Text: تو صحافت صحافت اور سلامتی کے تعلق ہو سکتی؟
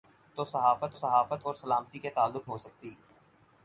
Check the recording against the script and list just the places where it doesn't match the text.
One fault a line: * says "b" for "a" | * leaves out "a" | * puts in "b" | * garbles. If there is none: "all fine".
all fine